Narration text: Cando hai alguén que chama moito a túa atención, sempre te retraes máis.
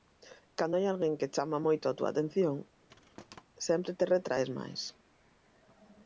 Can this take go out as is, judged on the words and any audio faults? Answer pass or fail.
fail